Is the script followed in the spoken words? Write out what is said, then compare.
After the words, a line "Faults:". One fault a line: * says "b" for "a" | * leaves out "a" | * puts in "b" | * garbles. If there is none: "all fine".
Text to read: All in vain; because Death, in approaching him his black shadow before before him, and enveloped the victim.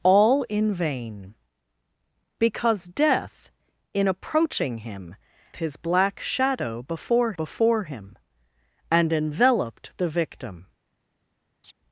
All in vain; because Death, in approaching him his black shadow before before him, and enveloped the victim.
Faults:
all fine